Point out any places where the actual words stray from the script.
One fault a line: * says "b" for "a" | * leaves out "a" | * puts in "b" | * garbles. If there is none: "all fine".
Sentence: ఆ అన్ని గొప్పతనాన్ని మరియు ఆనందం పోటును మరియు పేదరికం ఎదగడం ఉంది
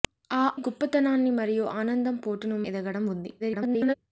* leaves out "అన్ని"
* leaves out "మరియు పేదరికం"
* garbles